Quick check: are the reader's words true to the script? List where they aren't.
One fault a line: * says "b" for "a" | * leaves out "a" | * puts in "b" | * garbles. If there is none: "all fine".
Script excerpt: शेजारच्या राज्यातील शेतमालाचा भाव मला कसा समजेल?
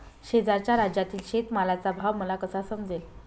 all fine